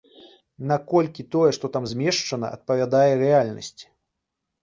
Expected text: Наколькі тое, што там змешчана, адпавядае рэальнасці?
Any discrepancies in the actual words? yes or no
no